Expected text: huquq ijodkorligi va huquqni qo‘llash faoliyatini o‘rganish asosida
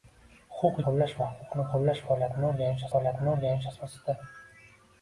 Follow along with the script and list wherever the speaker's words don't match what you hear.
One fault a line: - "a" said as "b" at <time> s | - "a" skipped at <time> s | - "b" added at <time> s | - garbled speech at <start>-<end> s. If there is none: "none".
- "ijodkorligi" said as "qo‘llash" at 0.8 s
- "faoliyatini o‘rganish" added at 3.0 s